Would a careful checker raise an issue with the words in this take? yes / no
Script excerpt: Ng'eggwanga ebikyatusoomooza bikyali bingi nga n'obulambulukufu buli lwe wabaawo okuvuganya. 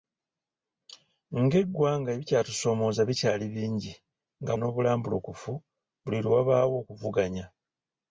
no